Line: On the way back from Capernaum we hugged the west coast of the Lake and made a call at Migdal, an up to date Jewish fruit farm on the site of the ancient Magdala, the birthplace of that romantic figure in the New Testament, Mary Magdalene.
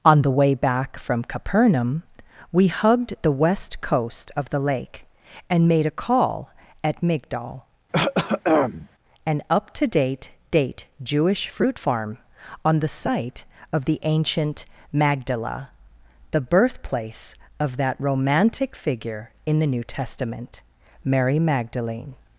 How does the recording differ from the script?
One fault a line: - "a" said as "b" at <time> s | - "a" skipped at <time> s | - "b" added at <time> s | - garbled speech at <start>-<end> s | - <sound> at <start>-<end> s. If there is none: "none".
- throat clearing at 7.9-8.9 s
- "date" added at 10.5 s